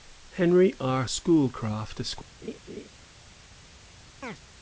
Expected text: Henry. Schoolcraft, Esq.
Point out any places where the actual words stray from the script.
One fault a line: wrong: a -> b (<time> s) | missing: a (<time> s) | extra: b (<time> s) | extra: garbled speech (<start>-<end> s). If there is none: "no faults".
extra: R (0.8 s)